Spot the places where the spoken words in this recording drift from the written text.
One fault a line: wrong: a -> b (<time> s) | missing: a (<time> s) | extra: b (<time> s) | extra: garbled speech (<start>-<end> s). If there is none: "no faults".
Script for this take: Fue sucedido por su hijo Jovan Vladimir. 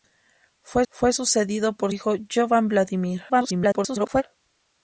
extra: fue (0.9 s)
missing: su (1.9 s)
extra: garbled speech (3.3-4.2 s)